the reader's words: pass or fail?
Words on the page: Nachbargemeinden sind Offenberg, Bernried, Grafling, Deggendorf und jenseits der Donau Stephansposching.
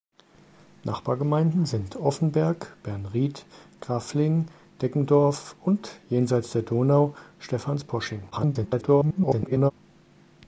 fail